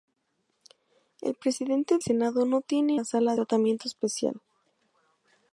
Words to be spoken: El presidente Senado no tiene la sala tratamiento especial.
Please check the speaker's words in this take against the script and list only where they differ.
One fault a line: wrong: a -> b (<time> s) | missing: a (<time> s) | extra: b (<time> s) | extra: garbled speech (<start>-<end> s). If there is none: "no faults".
no faults